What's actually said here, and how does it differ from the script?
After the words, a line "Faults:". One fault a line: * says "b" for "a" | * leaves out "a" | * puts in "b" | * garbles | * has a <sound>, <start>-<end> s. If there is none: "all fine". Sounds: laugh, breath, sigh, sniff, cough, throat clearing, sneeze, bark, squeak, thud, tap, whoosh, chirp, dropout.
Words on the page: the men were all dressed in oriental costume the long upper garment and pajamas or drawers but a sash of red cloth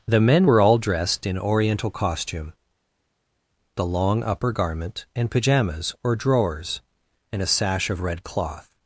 the men were all dressed in oriental costume the long upper garment and pajamas or drawers and a sash of red cloth
Faults:
* says "and" for "but"